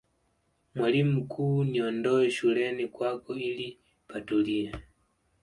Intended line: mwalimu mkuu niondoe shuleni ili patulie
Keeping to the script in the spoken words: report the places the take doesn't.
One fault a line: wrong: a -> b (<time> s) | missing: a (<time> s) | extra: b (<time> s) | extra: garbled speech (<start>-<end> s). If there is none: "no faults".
extra: kwako (2.9 s)